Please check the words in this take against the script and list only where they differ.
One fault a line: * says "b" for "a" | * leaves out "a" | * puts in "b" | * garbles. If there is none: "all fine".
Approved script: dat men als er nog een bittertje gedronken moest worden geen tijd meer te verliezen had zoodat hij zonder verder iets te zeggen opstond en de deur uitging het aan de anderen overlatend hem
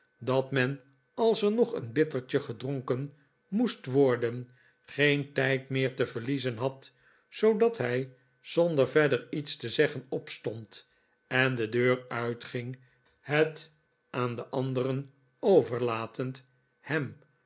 all fine